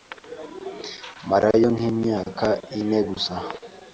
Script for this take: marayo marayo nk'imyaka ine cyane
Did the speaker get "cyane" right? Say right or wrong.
wrong